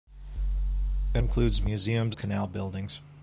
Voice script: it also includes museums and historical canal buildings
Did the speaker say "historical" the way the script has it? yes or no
no